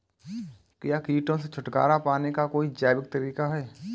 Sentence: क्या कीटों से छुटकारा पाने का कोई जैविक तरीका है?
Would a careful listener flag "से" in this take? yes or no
no